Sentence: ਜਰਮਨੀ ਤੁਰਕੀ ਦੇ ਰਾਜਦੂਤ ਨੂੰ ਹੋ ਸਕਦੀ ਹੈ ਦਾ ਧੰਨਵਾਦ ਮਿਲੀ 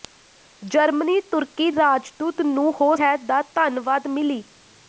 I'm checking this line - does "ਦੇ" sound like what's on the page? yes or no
no